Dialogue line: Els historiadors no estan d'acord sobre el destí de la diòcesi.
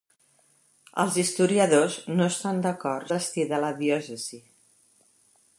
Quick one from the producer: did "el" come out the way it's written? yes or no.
no